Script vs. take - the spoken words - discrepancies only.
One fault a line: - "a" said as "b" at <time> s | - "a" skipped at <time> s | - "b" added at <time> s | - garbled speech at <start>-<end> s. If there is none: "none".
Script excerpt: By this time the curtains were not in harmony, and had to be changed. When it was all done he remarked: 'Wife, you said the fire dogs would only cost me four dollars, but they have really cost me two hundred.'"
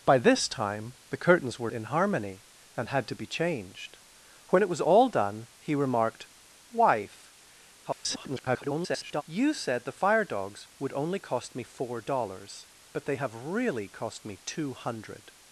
- "not" skipped at 1.7 s
- garbled speech at 7.8-9.2 s